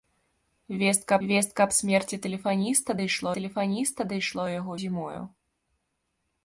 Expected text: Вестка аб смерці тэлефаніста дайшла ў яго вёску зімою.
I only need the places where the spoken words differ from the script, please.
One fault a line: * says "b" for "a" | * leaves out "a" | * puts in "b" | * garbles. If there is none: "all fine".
* puts in "вестка"
* puts in "тэлефаніста дайшла"
* leaves out "вёску"